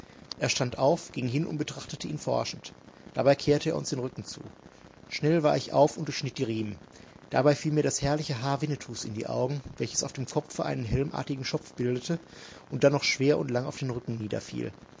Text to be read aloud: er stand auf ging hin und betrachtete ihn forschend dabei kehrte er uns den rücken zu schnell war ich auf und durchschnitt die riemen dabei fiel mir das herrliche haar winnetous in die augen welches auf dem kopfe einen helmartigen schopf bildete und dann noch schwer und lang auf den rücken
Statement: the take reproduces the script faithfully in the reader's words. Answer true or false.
true